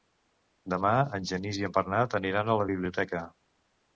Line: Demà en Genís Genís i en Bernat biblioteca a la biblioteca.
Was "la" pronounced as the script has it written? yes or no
yes